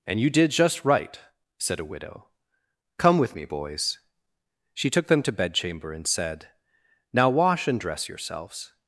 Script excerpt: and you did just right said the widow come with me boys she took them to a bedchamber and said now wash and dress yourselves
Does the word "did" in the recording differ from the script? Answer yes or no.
no